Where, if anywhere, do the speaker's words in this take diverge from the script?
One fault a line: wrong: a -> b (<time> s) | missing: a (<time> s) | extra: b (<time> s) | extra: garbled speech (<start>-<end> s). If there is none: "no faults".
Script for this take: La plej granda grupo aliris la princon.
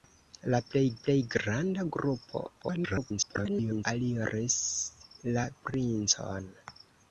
extra: plej (1.0 s)
extra: garbled speech (2.6-3.9 s)